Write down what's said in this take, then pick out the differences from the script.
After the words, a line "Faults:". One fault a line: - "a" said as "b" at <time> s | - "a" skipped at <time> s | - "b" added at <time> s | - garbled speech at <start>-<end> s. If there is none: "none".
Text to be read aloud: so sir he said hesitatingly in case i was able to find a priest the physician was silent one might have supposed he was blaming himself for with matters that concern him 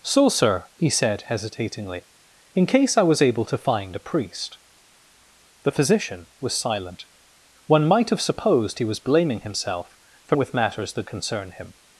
so sir he said hesitatingly in case i was able to find a priest the physician was silent one might have supposed he was blaming himself for with matters that concern him
Faults:
none